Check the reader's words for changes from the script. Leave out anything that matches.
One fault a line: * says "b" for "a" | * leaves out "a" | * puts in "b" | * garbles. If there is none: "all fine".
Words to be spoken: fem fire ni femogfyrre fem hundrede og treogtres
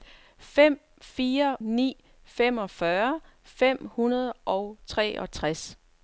all fine